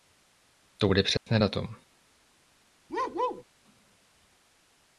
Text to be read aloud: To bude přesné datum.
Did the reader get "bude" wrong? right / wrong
right